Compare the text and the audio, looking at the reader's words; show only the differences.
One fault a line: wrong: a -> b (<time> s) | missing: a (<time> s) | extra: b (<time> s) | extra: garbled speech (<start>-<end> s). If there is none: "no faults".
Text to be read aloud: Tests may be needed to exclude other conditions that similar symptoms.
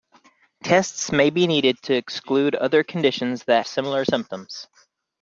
no faults